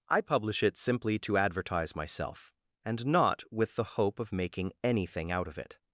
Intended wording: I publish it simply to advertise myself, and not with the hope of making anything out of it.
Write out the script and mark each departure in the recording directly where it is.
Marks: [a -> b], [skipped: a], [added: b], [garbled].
I publish it simply to advertise myself, and not with the hope of making anything out of it.